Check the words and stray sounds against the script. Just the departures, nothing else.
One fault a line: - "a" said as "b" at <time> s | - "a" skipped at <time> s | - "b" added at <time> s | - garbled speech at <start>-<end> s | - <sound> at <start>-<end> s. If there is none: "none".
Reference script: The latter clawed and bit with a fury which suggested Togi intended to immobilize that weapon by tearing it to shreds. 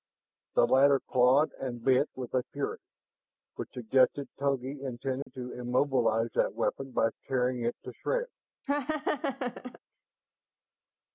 - dropout at 5.2-5.3 s
- laugh at 8.6-9.8 s